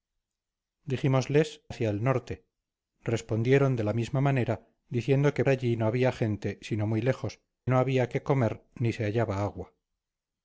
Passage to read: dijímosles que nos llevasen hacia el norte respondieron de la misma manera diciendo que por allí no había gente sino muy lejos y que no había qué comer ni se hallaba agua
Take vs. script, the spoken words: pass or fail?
fail